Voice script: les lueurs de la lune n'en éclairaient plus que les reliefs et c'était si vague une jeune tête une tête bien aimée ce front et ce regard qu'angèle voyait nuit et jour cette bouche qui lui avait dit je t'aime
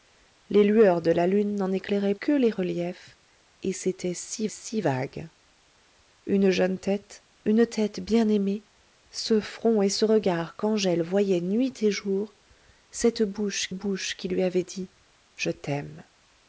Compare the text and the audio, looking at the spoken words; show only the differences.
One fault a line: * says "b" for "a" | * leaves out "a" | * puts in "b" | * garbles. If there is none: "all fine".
* leaves out "plus"
* puts in "si"
* puts in "bouche"